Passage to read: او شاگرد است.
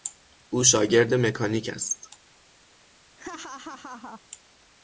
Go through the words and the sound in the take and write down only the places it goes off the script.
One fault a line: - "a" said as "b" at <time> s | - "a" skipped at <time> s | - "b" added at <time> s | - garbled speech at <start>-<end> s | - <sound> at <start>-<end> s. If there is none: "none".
- "مکانیک" added at 1.1 s
- laugh at 3.2-4.2 s